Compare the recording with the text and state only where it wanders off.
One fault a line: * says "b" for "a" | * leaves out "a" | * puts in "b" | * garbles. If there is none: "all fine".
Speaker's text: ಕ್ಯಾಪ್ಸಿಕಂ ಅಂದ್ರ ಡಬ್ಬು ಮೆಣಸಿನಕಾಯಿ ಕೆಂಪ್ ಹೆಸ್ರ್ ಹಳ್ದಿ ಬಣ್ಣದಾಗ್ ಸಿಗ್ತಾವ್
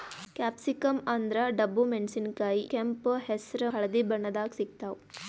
all fine